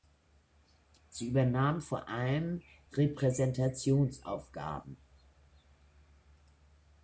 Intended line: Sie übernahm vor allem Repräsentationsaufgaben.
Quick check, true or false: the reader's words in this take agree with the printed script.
true